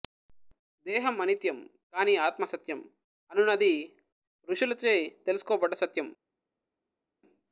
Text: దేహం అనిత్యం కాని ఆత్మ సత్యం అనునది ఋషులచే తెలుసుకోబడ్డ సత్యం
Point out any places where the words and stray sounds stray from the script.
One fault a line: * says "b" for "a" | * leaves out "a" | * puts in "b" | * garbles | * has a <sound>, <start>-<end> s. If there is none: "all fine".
all fine